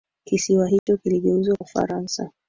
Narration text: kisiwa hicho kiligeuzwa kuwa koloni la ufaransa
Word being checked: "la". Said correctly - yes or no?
no